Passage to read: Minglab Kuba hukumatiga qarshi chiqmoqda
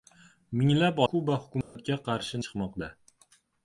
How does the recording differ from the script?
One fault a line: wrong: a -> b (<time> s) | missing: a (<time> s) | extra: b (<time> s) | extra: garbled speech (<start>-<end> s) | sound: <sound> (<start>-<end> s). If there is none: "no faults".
sound: dropout (1.6-1.8 s)